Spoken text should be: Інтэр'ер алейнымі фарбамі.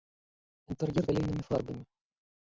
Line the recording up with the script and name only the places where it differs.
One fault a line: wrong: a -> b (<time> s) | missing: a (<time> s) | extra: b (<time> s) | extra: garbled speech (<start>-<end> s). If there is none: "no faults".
no faults